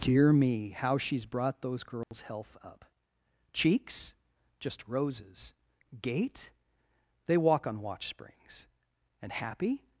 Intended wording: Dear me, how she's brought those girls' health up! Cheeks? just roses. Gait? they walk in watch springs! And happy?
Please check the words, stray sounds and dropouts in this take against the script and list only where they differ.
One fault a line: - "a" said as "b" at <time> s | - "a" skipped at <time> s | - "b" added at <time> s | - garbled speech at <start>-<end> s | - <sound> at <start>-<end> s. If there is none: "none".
- dropout at 2.0-2.1 s
- "in" said as "on" at 7.7 s